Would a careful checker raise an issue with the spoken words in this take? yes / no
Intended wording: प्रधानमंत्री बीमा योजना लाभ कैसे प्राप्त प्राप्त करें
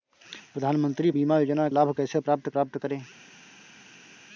no